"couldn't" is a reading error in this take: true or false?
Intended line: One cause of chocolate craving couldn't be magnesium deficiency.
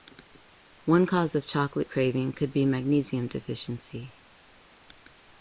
true